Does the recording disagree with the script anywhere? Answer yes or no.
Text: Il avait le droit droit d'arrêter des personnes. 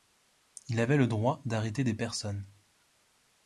yes